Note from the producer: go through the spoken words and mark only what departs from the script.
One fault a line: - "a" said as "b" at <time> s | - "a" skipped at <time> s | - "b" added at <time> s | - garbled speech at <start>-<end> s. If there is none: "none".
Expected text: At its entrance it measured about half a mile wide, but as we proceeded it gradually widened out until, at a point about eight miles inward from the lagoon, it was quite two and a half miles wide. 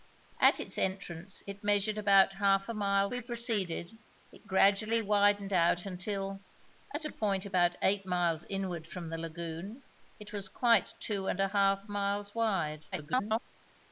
- "wide but as" skipped at 3.1 s
- garbled speech at 12.9-13.4 s